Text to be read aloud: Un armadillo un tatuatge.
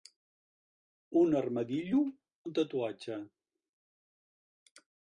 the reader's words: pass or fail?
pass